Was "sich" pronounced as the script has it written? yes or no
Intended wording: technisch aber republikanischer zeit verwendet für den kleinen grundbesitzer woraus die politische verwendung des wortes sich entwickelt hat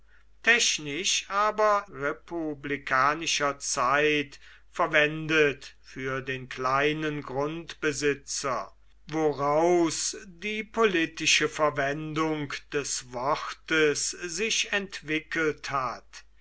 yes